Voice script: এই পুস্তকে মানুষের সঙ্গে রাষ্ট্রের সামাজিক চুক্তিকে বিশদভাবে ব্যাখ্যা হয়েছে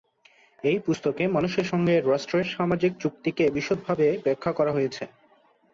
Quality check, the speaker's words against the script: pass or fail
fail